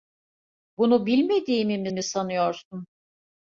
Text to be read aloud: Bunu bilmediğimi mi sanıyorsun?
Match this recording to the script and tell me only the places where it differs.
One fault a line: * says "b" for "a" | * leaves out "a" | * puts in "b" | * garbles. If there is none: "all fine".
* puts in "mi"